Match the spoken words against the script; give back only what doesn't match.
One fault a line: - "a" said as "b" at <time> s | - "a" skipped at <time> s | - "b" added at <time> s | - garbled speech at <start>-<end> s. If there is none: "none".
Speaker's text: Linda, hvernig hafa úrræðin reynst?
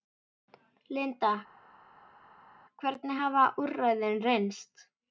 none